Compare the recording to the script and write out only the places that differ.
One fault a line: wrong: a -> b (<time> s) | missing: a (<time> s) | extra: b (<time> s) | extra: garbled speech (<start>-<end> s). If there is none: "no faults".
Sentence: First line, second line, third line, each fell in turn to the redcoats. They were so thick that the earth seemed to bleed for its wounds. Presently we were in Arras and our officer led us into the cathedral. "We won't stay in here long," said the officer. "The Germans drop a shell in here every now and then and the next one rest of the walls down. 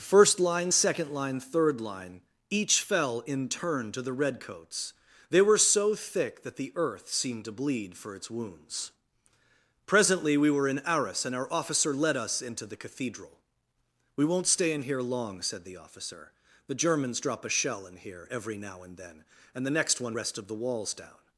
no faults